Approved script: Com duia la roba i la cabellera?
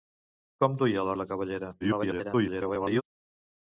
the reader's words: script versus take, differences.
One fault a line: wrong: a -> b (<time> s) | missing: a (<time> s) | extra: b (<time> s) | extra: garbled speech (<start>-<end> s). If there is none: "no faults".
missing: roba (1.1 s)
extra: garbled speech (1.8-3.0 s)